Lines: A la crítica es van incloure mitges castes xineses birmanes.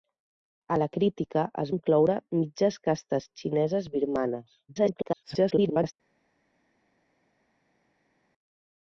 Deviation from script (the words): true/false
true